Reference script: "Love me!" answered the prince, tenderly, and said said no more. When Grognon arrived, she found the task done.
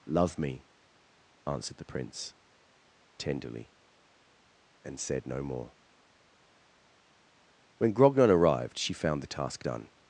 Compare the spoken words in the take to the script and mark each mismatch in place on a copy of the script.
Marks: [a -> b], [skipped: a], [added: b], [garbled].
"Love me!" answered the prince, tenderly, and said [skipped: said] no more. When Grognon arrived, she found the task done.